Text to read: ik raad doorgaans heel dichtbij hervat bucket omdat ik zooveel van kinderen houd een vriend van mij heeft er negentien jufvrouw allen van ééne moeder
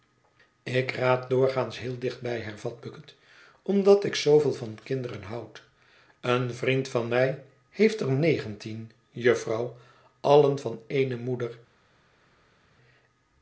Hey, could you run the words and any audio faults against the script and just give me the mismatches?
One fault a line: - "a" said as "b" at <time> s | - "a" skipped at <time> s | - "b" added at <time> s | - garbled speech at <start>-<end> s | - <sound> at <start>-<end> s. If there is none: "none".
none